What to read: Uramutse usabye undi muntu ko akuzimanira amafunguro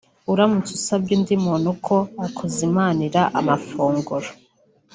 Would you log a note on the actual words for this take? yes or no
no